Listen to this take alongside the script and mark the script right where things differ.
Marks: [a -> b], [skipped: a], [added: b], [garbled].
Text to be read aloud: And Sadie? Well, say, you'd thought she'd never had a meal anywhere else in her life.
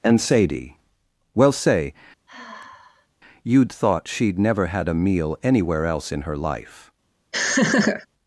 And Sadie? Well, say, you'd thought she'd never had a meal anywhere else in her life.